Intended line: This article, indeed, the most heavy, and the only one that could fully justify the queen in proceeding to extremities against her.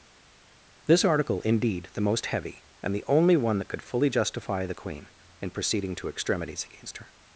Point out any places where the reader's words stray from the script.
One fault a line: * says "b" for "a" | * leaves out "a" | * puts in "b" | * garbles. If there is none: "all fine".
all fine